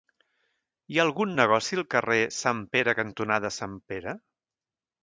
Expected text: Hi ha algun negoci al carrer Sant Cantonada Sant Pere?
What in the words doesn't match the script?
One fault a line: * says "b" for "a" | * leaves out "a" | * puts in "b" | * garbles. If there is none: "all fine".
* puts in "Pere"